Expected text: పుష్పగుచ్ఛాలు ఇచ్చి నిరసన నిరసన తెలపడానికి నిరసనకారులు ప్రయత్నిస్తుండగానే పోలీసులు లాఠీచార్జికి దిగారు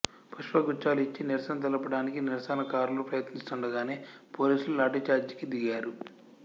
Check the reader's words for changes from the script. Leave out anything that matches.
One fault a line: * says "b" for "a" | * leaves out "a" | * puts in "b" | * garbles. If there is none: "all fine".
* leaves out "నిరసన"